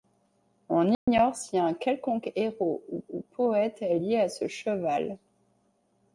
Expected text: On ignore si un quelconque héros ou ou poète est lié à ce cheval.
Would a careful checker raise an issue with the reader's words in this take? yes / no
no